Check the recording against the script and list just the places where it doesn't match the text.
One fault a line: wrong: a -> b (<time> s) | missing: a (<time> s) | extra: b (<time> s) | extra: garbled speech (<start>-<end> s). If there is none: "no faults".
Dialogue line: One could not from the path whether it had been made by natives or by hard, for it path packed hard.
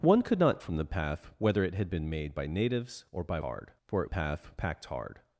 no faults